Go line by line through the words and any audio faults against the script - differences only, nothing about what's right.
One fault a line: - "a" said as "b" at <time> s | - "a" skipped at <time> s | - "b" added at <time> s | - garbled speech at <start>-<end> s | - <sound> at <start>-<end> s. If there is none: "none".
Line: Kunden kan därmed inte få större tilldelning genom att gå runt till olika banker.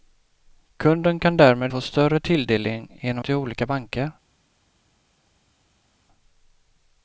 - "inte" skipped at 1.7 s
- "att gå runt" skipped at 3.2 s